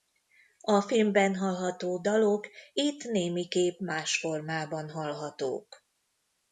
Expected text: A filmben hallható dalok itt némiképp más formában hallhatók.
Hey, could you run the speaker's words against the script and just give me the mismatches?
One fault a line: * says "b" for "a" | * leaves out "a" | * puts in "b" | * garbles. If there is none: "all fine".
all fine